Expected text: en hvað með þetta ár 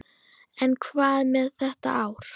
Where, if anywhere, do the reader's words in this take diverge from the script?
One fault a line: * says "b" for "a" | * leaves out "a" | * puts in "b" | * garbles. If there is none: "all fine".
all fine